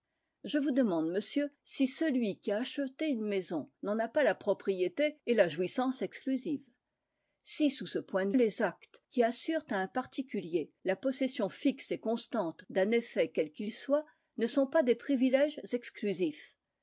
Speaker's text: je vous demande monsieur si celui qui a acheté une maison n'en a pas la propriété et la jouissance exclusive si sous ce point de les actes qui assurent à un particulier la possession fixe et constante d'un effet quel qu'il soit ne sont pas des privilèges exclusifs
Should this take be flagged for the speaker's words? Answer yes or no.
no